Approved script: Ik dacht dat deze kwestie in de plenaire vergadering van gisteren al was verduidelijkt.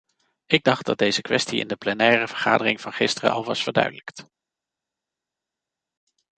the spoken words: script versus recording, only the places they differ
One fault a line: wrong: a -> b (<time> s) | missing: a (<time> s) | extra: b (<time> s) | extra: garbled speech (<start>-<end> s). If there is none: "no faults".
no faults